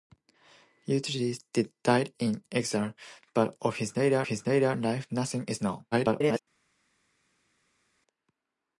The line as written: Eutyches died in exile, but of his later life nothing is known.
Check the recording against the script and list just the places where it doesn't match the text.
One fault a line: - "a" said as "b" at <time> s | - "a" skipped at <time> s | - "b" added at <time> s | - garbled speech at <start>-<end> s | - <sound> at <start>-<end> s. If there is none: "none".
- "his later" added at 4.2 s
- garbled speech at 5.9-6.4 s